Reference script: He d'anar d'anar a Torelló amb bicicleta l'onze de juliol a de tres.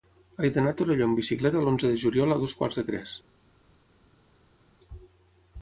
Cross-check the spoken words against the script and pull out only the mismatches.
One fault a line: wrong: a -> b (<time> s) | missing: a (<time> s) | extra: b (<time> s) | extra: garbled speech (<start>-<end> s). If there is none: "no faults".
missing: d'anar (0.7 s)
extra: dos quarts (2.5 s)